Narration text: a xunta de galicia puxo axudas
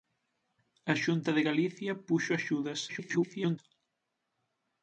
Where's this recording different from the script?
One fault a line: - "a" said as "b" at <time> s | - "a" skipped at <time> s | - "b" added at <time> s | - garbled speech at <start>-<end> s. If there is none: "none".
- garbled speech at 2.9-3.6 s